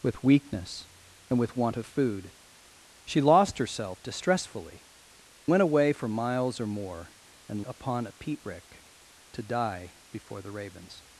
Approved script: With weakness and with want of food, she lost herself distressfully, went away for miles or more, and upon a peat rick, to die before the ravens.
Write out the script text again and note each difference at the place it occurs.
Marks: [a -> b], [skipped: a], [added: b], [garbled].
With weakness and with want of food, she lost herself distressfully, went away for miles or more, and upon a peat rick, to die before the ravens.